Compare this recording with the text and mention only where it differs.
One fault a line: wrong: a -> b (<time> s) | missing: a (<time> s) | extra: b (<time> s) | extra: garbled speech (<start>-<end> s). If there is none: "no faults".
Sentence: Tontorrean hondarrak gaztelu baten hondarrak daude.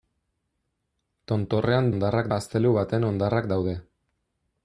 no faults